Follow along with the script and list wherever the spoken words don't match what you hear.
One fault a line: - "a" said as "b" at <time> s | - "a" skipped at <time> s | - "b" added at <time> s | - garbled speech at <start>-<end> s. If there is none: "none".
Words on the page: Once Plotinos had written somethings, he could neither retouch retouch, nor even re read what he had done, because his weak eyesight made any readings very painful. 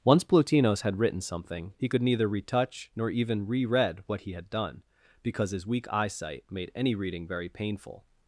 - "somethings" said as "something" at 1.2 s
- "retouch" skipped at 2.9 s
- "readings" said as "reading" at 6.9 s